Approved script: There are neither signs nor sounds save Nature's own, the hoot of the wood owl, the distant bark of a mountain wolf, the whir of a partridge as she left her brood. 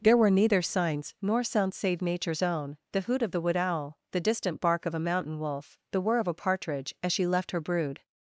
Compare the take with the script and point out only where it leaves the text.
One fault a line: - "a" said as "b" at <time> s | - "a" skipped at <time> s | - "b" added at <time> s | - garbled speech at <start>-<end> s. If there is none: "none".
- "are" said as "were" at 0.2 s